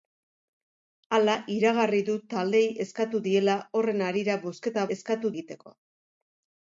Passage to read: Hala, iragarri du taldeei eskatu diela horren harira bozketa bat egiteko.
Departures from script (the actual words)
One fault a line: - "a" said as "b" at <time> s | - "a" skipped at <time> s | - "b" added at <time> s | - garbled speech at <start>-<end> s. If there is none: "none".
- "bat" said as "eskatu" at 5.0 s